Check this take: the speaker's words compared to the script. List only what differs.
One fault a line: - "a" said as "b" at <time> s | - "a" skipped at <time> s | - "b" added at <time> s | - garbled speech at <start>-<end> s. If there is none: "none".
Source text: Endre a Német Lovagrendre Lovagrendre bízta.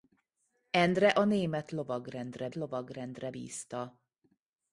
none